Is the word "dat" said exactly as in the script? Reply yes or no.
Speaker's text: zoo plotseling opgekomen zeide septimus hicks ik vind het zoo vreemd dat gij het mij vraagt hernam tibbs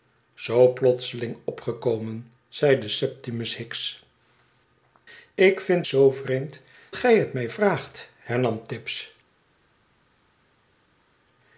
no